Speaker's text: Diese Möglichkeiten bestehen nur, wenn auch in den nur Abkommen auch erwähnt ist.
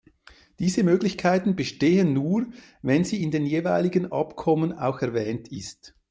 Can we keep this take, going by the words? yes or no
no